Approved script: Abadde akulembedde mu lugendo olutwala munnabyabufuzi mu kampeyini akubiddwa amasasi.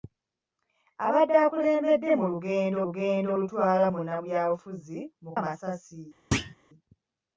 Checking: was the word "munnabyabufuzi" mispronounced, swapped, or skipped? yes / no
no